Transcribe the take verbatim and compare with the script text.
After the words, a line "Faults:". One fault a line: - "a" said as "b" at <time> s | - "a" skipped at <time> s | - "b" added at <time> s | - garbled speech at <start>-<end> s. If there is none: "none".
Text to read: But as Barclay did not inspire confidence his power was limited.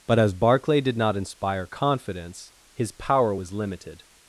But as Barclay did not inspire confidence his power was limited.
Faults:
none